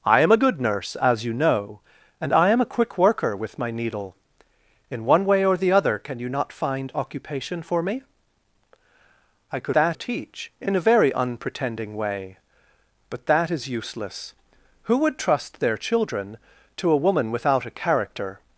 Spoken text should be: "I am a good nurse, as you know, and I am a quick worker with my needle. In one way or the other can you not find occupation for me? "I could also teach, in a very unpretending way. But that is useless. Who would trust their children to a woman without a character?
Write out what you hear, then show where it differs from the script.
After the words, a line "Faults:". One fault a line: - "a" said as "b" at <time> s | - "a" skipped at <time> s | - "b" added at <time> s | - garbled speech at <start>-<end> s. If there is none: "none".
"I am a good nurse, as you know, and I am a quick worker with my needle. In one way or the other can you not find occupation for me? "I could that teach, in a very unpretending way. But that is useless. Who would trust their children to a woman without a character?
Faults:
- "also" said as "that" at 9.7 s